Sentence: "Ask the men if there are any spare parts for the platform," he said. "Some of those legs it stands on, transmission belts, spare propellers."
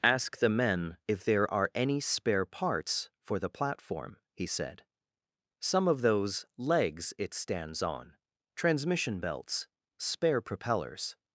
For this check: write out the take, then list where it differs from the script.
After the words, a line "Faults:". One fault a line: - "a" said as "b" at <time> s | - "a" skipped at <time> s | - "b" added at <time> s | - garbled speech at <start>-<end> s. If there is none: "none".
"Ask the men if there are any spare parts for the platform," he said. "Some of those legs it stands on, transmission belts, spare propellers."
Faults:
none